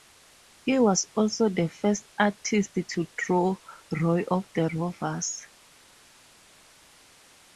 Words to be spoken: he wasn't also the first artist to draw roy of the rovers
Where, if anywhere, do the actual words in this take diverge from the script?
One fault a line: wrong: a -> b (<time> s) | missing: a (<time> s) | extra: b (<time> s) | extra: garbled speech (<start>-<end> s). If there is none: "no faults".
wrong: wasn't -> was (0.8 s)